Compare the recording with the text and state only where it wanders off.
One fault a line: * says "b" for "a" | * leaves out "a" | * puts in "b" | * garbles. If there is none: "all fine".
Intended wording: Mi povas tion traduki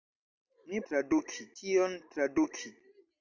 * says "traduki" for "povas"